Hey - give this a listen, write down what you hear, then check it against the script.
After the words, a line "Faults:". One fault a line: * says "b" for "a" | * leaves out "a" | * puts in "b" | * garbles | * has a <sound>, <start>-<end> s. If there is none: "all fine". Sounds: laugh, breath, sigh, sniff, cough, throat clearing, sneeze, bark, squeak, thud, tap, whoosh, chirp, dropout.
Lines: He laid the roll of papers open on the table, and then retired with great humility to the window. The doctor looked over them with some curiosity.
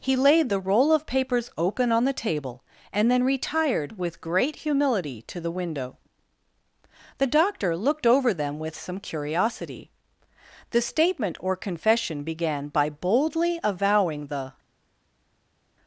He laid the roll of papers open on the table, and then retired with great humility to the window. The doctor looked over them with some curiosity. The statement or confession began by boldly avowing the
Faults:
* puts in "The statement or confession began by boldly avowing the"